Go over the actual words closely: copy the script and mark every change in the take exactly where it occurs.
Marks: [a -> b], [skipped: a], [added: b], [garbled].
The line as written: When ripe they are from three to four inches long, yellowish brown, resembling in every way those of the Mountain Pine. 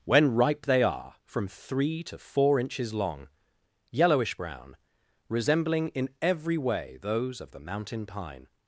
When ripe they are from three to four inches long, yellowish brown, resembling in every way those of the Mountain Pine.